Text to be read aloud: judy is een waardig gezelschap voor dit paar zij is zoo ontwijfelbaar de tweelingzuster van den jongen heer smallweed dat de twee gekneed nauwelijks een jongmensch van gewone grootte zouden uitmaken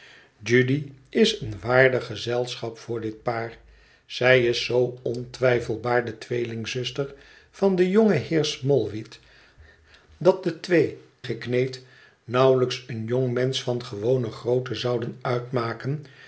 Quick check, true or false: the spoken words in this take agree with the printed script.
true